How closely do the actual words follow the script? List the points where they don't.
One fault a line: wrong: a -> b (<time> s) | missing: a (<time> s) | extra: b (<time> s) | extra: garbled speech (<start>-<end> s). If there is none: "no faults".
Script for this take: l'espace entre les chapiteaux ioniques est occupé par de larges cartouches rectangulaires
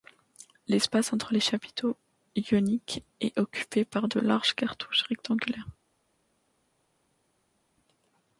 no faults